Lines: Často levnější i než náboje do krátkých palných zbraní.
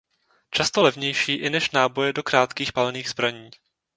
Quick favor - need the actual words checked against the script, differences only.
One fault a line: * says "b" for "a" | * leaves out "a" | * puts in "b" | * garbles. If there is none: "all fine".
all fine